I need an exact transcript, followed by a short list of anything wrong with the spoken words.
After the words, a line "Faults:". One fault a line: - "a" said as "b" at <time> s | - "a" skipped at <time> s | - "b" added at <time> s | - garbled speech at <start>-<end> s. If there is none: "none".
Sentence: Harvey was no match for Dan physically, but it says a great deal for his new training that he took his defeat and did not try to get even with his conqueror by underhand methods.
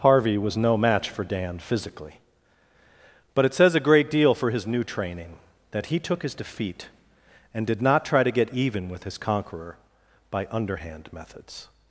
Harvey was no match for Dan physically, but it says a great deal for his new training that he took his defeat and did not try to get even with his conqueror by underhand methods.
Faults:
none